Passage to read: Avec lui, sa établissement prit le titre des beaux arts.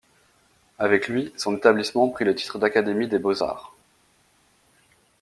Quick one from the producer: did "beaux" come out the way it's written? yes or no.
yes